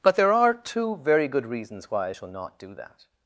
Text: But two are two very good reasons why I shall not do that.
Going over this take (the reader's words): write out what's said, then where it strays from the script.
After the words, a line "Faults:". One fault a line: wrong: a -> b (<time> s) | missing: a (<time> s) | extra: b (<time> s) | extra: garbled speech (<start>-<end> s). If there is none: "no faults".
But there are two very good reasons why I shall not do that.
Faults:
wrong: two -> there (0.1 s)